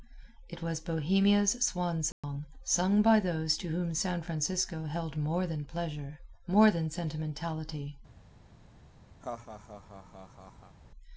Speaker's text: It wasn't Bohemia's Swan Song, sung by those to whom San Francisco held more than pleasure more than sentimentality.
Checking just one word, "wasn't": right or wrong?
wrong